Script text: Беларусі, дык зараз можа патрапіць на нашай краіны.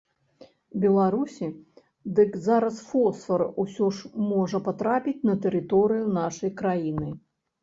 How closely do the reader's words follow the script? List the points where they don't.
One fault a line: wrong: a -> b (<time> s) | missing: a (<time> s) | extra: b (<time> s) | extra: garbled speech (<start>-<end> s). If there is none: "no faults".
extra: фосфар усё ж (2.9 s)
extra: тэрыторыю (5.5 s)